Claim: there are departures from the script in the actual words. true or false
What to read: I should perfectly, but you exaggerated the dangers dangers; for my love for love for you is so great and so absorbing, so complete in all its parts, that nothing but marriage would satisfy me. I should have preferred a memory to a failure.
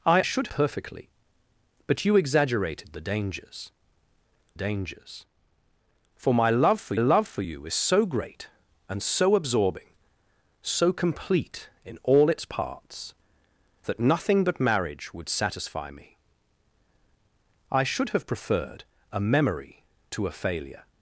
false